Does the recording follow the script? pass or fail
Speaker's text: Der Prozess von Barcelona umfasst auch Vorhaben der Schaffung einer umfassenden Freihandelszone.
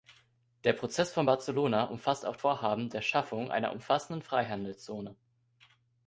pass